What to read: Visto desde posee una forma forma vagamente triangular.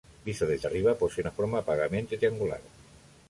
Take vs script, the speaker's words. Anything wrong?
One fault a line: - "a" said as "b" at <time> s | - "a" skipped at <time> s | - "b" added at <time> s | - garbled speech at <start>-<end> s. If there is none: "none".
- "arriba" added at 0.6 s
- "forma" skipped at 1.6 s